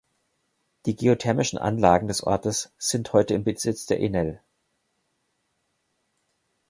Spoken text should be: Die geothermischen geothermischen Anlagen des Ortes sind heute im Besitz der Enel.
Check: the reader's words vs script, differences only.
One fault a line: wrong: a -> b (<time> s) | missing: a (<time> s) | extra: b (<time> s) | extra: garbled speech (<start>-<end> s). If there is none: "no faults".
missing: geothermischen (1.6 s)